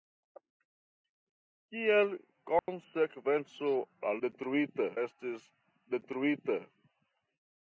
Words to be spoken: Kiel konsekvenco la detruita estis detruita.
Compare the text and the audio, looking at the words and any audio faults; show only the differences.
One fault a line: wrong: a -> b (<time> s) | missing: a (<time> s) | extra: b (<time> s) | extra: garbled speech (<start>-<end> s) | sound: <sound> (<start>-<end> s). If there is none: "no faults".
sound: dropout (2.6-2.7 s)